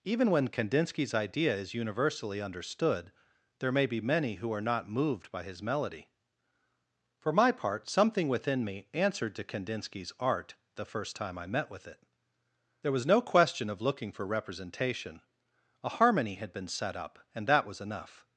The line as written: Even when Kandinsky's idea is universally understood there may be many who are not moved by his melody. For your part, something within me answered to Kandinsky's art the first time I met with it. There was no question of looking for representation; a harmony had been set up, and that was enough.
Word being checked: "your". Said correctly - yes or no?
no